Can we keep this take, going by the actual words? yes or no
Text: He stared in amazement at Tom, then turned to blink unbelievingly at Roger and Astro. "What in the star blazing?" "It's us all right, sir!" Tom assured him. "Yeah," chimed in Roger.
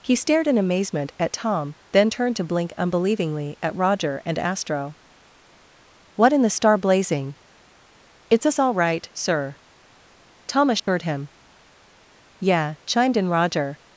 yes